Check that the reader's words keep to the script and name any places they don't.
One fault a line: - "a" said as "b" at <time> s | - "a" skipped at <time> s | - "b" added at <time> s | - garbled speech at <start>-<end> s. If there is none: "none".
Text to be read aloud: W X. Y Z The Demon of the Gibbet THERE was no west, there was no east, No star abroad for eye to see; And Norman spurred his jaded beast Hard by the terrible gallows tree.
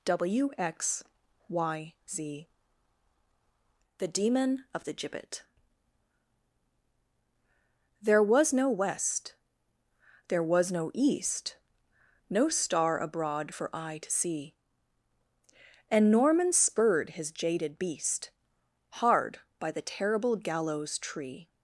none